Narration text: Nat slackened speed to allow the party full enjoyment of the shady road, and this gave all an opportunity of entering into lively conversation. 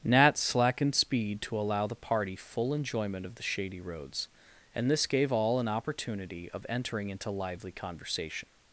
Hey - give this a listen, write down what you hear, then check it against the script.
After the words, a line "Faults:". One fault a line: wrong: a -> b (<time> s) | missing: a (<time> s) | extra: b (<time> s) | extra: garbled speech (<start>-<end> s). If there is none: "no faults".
Nat slackened speed to allow the party full enjoyment of the shady roads, and this gave all an opportunity of entering into lively conversation.
Faults:
wrong: road -> roads (3.8 s)